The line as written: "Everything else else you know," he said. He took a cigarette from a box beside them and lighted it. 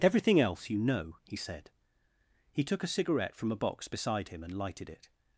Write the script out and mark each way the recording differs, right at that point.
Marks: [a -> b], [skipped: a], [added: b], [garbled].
"Everything else [skipped: else] you know," he said. He took a cigarette from a box beside [them -> him] and lighted it.